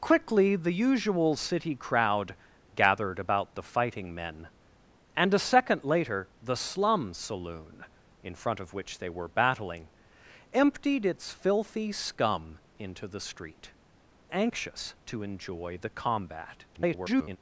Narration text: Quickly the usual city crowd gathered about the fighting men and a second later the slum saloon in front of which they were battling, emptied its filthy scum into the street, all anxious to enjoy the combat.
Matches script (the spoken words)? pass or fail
fail